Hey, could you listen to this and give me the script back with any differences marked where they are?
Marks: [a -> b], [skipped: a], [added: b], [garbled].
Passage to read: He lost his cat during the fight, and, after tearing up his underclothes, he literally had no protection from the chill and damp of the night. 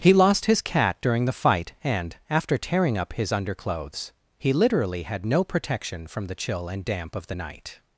He lost his cat during the fight, and, after tearing up his underclothes, he literally had no protection from the chill and damp of the night.